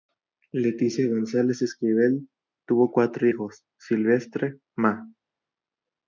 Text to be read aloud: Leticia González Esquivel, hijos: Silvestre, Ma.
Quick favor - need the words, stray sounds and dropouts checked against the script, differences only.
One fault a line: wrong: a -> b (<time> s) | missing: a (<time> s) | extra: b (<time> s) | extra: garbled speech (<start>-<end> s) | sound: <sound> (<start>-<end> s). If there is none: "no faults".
extra: tuvo cuatro (2.7 s)